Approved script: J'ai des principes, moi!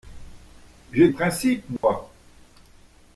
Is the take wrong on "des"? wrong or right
wrong